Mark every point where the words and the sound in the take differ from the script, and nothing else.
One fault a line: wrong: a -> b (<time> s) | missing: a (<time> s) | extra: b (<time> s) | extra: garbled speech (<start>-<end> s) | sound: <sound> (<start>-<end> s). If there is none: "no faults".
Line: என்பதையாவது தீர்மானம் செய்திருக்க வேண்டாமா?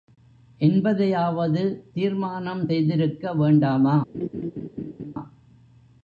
sound: laugh (4.1-5.1 s)